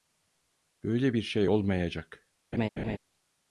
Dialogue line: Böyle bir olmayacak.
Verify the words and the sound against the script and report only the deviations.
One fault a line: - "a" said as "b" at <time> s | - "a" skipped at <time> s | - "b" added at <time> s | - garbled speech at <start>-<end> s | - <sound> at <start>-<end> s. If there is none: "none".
- "şey" added at 1.2 s
- laugh at 2.5-3.0 s